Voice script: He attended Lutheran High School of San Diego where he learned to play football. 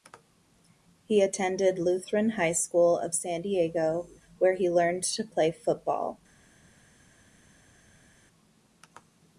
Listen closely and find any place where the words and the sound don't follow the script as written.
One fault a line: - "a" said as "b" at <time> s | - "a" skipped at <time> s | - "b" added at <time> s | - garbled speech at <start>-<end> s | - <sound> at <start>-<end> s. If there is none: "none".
none